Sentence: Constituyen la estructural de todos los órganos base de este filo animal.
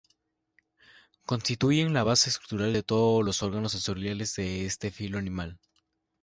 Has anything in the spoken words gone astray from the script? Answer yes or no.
yes